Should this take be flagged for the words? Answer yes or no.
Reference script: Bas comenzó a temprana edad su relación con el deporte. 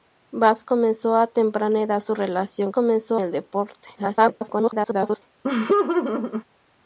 yes